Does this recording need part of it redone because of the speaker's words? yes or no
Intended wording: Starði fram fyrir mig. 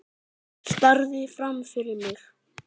no